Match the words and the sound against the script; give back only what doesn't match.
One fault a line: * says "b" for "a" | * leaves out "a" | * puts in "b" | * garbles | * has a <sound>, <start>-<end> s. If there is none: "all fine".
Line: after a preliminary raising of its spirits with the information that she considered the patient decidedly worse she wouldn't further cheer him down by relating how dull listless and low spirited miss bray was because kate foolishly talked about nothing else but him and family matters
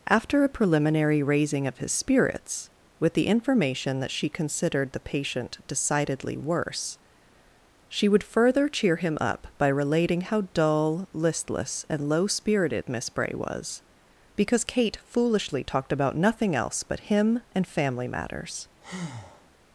* says "his" for "its"
* says "would" for "wouldn't"
* says "up" for "down"
* has a breath, 18.8-19.5 s